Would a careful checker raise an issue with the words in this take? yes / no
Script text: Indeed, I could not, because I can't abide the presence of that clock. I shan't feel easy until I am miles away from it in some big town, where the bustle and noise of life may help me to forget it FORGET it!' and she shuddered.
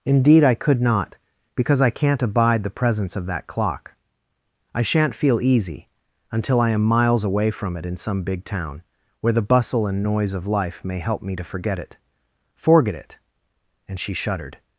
no